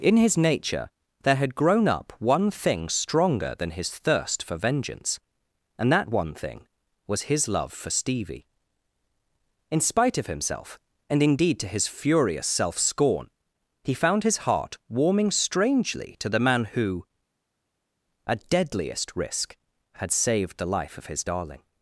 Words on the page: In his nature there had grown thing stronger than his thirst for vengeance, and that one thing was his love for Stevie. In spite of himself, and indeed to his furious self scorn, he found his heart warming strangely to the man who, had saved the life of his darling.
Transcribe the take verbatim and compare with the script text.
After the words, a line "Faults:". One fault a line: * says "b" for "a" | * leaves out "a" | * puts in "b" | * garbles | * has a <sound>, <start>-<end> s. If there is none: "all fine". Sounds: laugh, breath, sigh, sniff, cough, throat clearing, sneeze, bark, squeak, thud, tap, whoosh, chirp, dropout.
In his nature there had grown up one thing stronger than his thirst for vengeance, and that one thing was his love for Stevie. In spite of himself, and indeed to his furious self scorn, he found his heart warming strangely to the man who, at deadliest risk, had saved the life of his darling.
Faults:
* puts in "up one"
* puts in "at deadliest risk"